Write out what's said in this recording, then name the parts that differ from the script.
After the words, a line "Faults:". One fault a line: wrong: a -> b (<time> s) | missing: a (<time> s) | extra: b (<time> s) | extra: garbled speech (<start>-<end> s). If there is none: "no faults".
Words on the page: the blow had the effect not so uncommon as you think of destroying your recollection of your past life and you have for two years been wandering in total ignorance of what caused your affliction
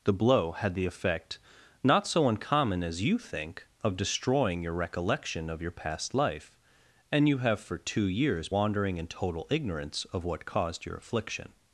the blow had the effect not so uncommon as you think of destroying your recollection of your past life and you have for two years wandering in total ignorance of what caused your affliction
Faults:
missing: been (8.5 s)